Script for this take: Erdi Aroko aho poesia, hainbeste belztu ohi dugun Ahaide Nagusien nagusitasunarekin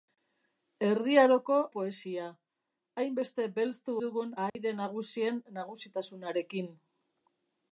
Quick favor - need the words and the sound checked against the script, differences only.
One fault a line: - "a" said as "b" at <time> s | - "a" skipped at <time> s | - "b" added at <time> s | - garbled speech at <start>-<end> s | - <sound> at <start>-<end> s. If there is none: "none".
- "aho" skipped at 1.6 s
- "ohi" skipped at 3.9 s
- dropout at 4.5-4.6 s